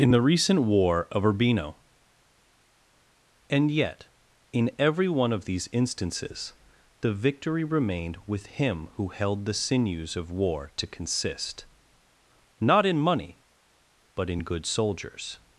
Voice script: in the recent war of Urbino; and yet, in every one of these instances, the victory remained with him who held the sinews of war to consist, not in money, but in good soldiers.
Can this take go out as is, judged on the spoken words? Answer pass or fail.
pass